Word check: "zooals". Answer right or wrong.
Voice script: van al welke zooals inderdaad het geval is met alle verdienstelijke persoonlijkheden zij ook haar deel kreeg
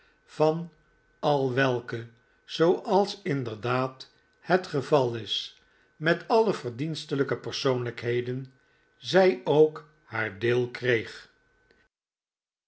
right